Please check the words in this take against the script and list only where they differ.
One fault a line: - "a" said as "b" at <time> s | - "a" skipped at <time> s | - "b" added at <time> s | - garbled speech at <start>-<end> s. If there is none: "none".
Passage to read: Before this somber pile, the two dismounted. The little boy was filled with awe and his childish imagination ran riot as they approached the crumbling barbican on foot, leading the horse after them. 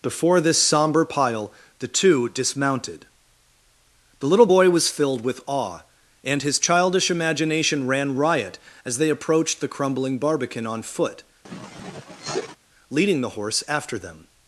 none